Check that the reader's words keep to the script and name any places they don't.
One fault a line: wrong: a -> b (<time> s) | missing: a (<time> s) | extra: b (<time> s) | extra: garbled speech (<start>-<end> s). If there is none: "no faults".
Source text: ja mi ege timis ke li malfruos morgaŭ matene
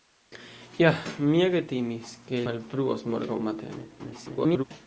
missing: li (2.4 s)
extra: garbled speech (4.0-4.6 s)